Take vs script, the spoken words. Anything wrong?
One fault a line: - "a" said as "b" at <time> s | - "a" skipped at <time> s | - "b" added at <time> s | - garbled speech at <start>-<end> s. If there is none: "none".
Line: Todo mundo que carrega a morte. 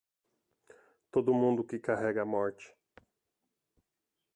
none